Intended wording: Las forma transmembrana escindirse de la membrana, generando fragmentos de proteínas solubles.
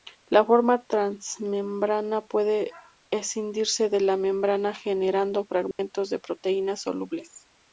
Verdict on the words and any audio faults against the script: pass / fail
fail